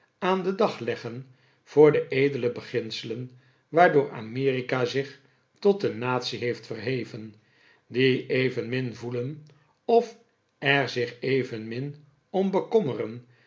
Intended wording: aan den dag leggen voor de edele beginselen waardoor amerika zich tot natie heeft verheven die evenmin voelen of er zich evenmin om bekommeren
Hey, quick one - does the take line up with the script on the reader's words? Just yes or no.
no